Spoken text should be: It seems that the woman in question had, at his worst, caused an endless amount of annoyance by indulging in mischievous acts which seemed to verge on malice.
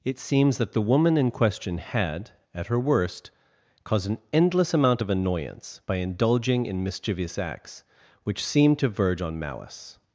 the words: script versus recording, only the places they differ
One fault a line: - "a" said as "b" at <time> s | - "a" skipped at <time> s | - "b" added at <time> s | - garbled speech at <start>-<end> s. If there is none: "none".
- "his" said as "her" at 2.7 s